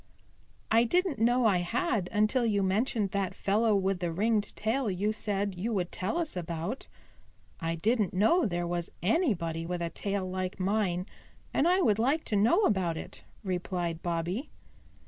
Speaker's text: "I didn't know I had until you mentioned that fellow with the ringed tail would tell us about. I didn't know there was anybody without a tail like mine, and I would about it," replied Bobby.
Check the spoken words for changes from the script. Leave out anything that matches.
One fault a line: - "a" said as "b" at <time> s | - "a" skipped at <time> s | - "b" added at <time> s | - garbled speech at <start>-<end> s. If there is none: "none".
- "you said you" added at 4.9 s
- "without" said as "with" at 9.6 s
- "like to know" added at 12.0 s